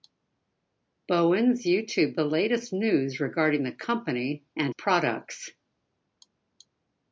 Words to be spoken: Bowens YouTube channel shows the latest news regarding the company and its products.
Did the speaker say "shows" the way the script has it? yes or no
no